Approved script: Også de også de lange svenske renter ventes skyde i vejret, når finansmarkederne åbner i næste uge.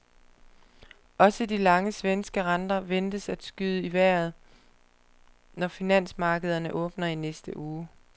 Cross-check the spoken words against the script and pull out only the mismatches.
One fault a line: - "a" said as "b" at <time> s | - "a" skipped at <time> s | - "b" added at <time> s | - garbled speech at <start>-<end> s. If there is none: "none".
- "også de" skipped at 1.6 s
- "at" added at 3.3 s